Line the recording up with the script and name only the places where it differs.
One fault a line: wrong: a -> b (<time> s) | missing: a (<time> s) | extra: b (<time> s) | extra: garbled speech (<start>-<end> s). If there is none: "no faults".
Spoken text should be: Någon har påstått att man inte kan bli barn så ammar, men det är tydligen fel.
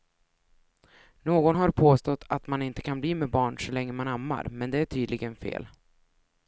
extra: med (3.1 s)
extra: länge man (3.7 s)